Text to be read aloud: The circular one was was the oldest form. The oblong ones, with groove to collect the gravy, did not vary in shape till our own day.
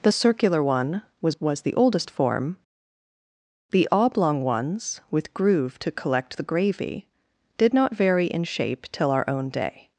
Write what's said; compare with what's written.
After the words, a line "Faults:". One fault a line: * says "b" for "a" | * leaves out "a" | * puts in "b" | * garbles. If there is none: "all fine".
The circular one was was the oldest form. The oblong ones, with groove to collect the gravy, did not vary in shape till our own day.
Faults:
all fine